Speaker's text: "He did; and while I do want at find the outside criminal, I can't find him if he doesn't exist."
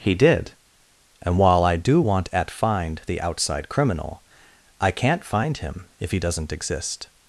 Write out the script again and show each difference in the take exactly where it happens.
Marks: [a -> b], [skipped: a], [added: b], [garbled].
"He did; and while I do want at find the outside criminal, I can't find him if he doesn't exist."